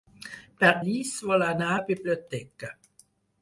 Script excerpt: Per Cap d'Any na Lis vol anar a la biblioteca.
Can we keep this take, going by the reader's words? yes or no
no